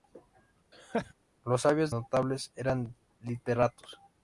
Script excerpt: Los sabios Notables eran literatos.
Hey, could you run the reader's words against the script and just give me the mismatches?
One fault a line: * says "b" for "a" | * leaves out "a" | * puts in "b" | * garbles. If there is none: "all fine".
all fine